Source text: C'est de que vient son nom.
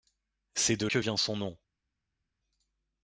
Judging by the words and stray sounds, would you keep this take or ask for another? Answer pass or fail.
pass